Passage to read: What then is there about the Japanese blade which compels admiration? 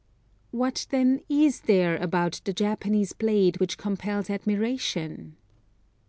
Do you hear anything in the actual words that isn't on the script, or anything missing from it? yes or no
no